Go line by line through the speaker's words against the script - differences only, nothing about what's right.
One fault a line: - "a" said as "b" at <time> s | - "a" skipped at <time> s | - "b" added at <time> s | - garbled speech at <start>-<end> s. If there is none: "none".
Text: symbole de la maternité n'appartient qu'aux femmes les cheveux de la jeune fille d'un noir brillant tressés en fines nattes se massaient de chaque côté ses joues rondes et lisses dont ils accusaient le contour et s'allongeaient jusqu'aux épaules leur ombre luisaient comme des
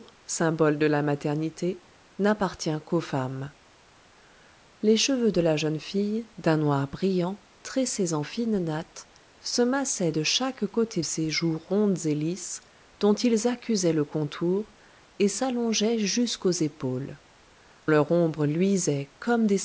none